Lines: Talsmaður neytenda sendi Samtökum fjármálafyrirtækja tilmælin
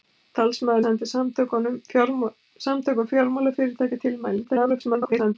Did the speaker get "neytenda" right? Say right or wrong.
wrong